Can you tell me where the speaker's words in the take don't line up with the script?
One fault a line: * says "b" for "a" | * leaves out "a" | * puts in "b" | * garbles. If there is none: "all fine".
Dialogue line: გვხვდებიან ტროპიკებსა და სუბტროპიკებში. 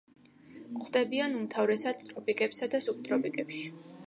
* puts in "უმთავრესად"